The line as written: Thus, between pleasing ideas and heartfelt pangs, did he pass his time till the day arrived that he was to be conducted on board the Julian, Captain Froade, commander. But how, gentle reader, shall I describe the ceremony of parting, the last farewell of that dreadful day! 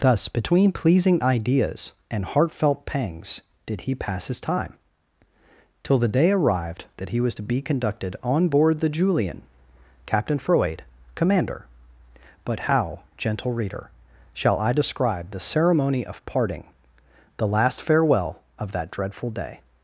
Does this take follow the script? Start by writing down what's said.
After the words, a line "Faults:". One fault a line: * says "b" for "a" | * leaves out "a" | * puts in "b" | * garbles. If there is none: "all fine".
Thus, between pleasing ideas and heartfelt pangs, did he pass his time till the day arrived that he was to be conducted on board the Julian, Captain Froade, commander. But how, gentle reader, shall I describe the ceremony of parting, the last farewell of that dreadful day!
Faults:
all fine